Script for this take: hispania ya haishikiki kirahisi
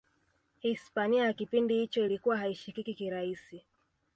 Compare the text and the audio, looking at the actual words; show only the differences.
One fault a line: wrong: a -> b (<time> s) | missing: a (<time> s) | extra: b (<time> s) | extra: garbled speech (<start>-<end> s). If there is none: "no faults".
extra: kipindi hicho ilikuwa (1.3 s)